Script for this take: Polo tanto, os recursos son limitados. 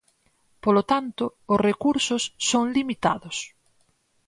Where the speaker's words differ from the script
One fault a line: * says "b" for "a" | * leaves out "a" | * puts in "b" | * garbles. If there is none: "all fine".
all fine